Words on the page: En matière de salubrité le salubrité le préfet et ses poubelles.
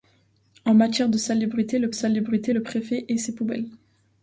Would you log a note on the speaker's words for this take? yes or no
no